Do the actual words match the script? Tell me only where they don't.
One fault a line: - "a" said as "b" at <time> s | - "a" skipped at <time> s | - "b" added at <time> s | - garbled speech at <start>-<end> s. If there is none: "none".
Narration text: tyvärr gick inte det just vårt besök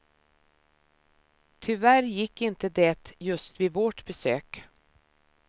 - "vid" added at 3.6 s